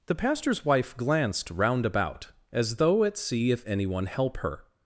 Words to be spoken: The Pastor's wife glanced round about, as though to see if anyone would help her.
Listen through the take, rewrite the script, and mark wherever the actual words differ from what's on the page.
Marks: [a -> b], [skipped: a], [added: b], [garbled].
The Pastor's wife glanced round about, as though [to -> at] see if anyone [skipped: would] help her.